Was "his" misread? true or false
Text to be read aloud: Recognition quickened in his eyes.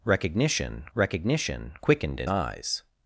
true